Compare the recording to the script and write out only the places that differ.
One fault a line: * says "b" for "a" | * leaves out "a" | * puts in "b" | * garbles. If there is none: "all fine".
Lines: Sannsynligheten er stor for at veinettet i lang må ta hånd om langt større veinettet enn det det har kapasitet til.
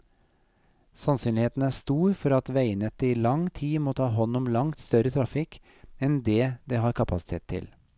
* puts in "tid"
* says "trafikk" for "veinettet"